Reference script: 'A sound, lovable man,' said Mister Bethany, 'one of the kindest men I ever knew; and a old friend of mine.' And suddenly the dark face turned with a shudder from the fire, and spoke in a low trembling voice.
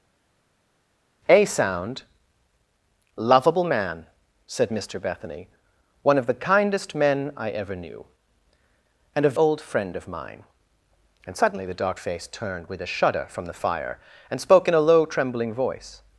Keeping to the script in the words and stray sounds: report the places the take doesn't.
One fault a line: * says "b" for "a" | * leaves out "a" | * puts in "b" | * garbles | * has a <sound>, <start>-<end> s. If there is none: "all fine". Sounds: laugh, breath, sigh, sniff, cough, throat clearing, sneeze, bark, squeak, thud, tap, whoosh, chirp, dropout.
all fine